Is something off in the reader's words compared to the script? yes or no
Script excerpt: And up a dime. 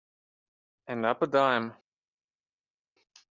no